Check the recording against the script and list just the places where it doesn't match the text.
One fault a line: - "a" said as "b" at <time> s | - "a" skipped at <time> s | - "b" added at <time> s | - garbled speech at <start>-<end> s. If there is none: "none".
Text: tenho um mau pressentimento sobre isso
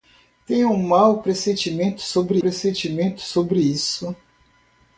- "pressentimento sobre" added at 2.4 s